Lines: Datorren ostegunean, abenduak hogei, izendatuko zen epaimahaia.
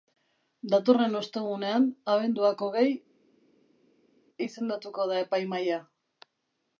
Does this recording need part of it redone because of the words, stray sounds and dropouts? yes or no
yes